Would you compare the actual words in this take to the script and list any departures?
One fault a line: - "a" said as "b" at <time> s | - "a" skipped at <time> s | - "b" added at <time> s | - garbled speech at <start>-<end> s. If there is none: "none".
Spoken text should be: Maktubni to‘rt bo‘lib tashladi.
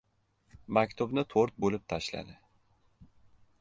none